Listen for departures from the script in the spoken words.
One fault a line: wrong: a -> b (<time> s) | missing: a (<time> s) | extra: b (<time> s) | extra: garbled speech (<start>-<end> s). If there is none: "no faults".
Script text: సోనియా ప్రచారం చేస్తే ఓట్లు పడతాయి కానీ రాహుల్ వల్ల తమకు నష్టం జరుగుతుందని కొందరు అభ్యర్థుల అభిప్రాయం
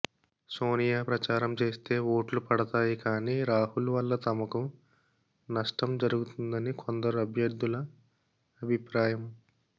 no faults